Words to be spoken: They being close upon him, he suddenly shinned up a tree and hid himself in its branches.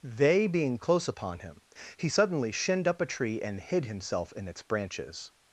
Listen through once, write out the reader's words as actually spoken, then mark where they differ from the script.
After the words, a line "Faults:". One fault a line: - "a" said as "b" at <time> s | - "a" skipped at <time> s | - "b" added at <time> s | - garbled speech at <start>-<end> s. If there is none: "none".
They being close upon him, he suddenly shinned up a tree and hid himself in its branches.
Faults:
none